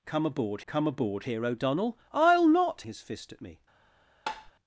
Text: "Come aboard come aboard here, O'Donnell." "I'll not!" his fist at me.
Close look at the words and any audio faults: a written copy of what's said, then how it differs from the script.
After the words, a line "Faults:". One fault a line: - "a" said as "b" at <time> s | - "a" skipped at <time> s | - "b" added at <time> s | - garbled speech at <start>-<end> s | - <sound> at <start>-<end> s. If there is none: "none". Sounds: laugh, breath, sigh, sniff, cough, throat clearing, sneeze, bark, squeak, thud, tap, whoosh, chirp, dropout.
"Come aboard come aboard here, O'Donnell." "I'll not!" his fist at me.
Faults:
- tap at 4.3-4.5 s